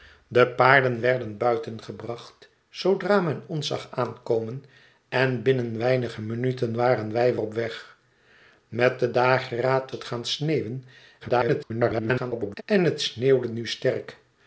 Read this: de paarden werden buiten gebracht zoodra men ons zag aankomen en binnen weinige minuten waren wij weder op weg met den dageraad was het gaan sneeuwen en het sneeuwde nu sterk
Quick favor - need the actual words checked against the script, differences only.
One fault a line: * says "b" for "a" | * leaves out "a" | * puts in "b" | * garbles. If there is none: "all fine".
* leaves out "weder"
* leaves out "was"
* garbles